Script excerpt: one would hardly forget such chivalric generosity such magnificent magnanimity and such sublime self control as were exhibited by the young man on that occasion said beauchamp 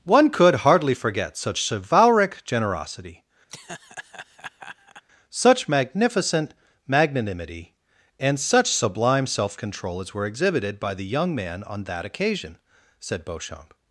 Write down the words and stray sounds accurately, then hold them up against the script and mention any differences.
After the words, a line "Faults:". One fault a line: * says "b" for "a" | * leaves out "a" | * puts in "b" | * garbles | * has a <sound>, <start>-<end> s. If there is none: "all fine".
one could hardly forget such chivalric generosity such magnificent magnanimity and such sublime self control as were exhibited by the young man on that occasion said beauchamp
Faults:
* says "could" for "would"
* has a laugh, 3.5-5.0 s